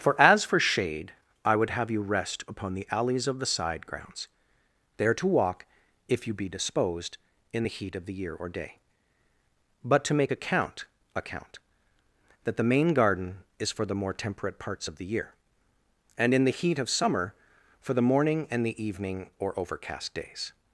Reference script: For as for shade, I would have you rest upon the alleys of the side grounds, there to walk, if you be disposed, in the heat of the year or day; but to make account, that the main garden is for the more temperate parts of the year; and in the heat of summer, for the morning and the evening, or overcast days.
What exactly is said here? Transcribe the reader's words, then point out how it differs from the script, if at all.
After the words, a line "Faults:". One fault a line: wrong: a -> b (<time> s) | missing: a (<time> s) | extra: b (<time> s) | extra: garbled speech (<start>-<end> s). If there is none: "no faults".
For as for shade, I would have you rest upon the alleys of the side grounds, there to walk, if you be disposed, in the heat of the year or day; but to make account account, that the main garden is for the more temperate parts of the year; and in the heat of summer, for the morning and the evening, or overcast days.
Faults:
extra: account (11.1 s)